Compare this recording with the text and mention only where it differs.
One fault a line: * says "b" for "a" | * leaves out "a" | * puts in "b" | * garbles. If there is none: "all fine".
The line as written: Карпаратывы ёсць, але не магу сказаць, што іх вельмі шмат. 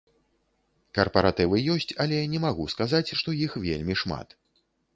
all fine